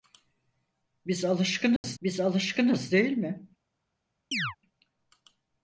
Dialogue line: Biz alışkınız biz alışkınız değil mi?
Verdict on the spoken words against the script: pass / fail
pass